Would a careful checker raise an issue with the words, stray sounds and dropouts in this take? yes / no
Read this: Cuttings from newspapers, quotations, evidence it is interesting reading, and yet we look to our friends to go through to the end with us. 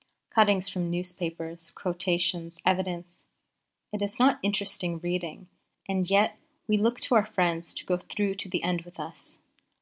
yes